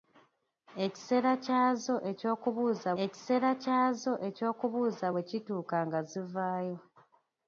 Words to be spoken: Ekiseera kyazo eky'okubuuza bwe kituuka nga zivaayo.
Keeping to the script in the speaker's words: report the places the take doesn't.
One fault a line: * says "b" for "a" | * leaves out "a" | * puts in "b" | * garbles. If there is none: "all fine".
* puts in "ekiseera kyazo eky'okubuuza"